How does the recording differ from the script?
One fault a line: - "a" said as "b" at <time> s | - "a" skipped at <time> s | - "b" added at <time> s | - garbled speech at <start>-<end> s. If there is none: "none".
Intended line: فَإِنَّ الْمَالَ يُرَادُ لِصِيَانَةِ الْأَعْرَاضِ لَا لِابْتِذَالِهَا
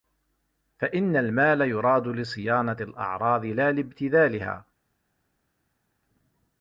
none